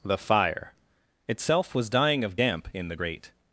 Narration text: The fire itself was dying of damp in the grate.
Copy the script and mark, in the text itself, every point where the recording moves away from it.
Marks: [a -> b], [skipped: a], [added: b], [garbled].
The fire itself was dying of damp in the grate.